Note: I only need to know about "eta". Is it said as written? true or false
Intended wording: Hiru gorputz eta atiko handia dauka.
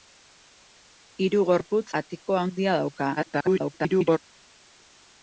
false